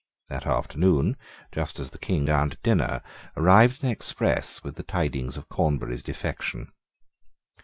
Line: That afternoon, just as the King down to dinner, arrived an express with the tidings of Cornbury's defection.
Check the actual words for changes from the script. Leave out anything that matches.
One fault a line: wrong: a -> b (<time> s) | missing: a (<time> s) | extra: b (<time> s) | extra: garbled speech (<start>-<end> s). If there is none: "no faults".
no faults